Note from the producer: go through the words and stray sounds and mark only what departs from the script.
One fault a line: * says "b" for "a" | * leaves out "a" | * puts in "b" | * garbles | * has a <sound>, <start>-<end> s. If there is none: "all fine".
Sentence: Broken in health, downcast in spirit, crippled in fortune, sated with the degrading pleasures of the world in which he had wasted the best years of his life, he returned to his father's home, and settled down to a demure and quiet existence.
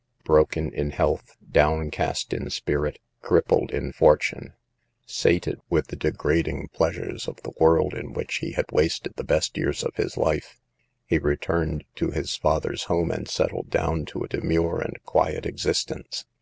all fine